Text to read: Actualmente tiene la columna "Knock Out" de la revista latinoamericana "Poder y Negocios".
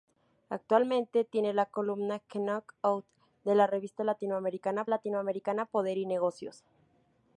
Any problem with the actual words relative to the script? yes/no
yes